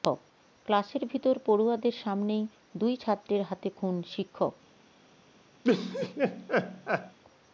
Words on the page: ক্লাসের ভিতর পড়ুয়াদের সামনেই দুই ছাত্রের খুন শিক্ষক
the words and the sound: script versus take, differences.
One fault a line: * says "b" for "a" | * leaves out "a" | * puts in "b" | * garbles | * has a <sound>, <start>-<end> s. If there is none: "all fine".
* puts in "হাতে"
* has a laugh, 5.6-7.2 s